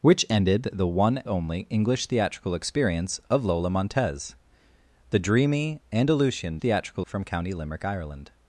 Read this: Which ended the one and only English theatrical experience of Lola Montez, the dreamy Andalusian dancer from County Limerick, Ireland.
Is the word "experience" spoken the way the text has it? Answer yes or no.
yes